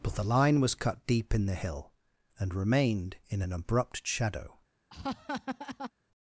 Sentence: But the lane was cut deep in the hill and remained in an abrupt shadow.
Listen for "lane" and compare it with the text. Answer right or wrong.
wrong